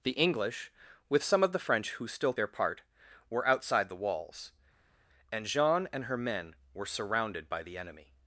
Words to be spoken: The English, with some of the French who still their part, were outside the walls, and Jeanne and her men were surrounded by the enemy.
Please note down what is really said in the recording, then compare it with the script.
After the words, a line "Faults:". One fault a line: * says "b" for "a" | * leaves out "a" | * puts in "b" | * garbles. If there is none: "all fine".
The English, with some of the French who still their part, were outside the walls, and Jeanne and her men were surrounded by the enemy.
Faults:
all fine